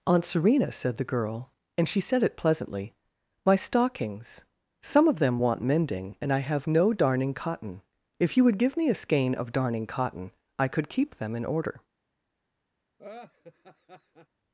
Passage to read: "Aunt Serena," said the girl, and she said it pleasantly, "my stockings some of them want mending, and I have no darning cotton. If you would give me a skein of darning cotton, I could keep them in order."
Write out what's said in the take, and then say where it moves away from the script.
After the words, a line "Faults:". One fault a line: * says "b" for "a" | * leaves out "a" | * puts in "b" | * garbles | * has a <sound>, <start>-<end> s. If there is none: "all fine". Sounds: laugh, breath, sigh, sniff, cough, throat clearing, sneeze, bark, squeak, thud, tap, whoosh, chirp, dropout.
"Aunt Serena," said the girl, and she said it pleasantly, "my stockings some of them want mending, and I have no darning cotton. If you would give me a skein of darning cotton, I could keep them in order."
Faults:
* has a laugh, 13.0-14.3 s